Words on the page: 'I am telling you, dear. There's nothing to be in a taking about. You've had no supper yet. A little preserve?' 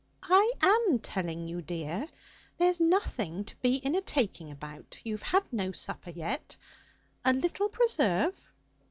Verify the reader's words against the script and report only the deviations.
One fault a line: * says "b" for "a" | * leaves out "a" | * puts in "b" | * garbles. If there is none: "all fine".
all fine